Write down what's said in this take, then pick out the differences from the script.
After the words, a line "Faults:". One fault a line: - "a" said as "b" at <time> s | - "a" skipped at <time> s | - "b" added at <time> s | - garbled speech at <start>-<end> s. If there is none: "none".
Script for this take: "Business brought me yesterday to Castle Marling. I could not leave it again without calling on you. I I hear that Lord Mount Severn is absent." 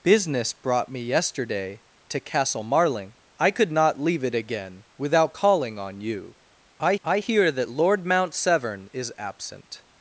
"Business brought me yesterday to Castle Marling. I could not leave it again without calling on you. I I hear that Lord Mount Severn is absent."
Faults:
none